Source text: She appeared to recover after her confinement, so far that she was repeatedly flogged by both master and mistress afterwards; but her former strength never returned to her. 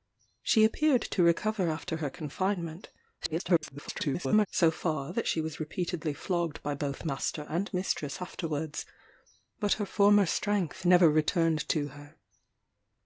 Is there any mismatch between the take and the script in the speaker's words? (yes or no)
yes